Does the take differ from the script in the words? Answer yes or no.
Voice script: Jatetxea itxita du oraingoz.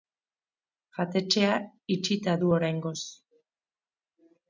no